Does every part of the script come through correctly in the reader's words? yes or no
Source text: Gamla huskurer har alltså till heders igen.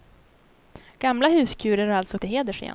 yes